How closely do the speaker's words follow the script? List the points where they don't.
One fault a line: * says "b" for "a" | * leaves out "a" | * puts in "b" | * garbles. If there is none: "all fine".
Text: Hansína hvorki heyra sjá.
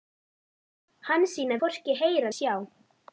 all fine